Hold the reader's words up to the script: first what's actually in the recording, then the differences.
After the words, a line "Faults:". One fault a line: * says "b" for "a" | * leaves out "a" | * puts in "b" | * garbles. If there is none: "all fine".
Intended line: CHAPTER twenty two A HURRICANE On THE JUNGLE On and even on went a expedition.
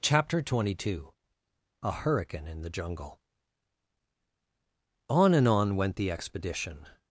CHAPTER twenty two A HURRICANE IN THE JUNGLE On and on went the expedition.
Faults:
* says "IN" for "On"
* leaves out "even"
* says "the" for "a"